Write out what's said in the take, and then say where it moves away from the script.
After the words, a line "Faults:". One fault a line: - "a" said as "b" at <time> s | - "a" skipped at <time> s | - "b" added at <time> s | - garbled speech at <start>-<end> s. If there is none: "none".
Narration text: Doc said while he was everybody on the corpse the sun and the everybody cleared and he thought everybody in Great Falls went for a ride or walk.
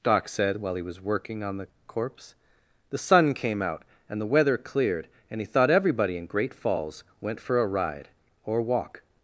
Doc said while he was working on the corpse the sun came out and the weather cleared and he thought everybody in Great Falls went for a ride or walk.
Faults:
- "everybody" said as "working" at 1.0 s
- "came out" added at 3.3 s
- "everybody" said as "weather" at 4.3 s